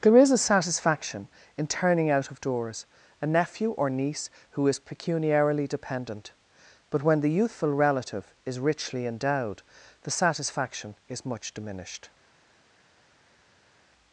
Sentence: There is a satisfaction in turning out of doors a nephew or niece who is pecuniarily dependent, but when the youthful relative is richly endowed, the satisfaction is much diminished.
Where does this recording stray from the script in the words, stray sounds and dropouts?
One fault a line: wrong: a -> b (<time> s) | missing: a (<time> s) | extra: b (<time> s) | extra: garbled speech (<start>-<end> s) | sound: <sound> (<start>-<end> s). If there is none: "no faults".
no faults